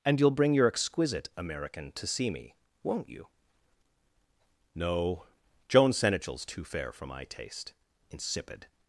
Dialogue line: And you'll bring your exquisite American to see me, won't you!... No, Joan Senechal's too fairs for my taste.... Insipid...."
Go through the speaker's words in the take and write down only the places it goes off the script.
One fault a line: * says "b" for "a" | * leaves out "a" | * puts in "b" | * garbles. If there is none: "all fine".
* says "fair" for "fairs"